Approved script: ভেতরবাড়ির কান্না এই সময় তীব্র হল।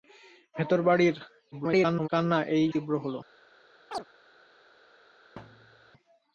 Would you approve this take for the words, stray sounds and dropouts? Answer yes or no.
no